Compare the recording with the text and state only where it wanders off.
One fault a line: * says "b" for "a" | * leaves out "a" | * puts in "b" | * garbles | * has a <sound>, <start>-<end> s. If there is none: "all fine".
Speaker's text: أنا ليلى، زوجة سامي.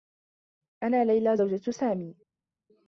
all fine